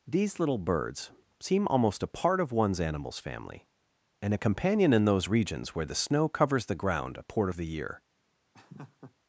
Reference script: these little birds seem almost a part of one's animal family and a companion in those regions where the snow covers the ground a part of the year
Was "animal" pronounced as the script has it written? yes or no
no